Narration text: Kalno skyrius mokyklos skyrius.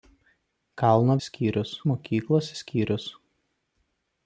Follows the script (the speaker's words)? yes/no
yes